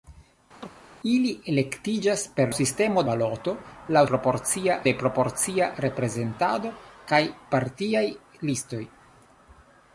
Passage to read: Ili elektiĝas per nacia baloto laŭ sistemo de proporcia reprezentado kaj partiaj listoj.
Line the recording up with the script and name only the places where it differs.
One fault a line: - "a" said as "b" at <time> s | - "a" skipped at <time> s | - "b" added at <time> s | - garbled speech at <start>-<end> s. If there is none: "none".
- "nacia" said as "sistemo" at 2.6 s
- "sistemo" said as "proporcia" at 4.1 s